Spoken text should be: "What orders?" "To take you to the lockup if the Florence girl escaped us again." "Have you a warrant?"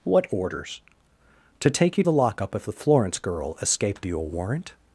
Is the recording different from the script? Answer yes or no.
yes